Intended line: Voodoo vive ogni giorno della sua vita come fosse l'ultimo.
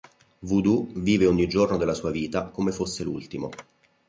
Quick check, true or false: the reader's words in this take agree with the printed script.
true